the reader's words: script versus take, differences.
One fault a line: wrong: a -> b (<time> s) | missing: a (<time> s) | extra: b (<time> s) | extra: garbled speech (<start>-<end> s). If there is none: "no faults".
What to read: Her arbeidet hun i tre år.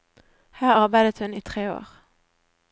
no faults